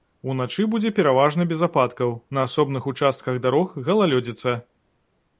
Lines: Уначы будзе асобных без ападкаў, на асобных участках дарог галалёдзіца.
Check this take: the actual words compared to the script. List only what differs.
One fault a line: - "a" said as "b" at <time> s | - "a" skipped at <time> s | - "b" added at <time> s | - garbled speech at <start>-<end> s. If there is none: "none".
- "асобных" said as "пераважна" at 1.0 s